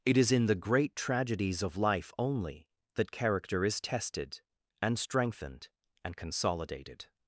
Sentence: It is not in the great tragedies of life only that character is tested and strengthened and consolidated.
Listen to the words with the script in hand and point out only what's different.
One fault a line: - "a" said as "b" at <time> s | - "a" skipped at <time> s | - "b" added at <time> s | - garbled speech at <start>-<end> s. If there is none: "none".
- "not" skipped at 0.3 s